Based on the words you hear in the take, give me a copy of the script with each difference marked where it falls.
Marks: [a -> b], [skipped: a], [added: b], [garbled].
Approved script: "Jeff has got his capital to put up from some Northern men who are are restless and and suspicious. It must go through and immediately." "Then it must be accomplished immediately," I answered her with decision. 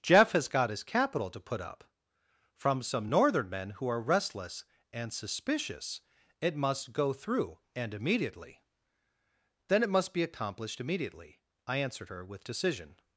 "Jeff has got his capital to put up from some Northern men who are [skipped: are] restless and [skipped: and] suspicious. It must go through and immediately." "Then it must be accomplished immediately," I answered her with decision.